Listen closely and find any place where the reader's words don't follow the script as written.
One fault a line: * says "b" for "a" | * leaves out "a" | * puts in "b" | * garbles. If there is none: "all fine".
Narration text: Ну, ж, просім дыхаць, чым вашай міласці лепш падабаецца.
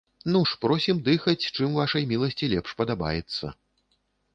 all fine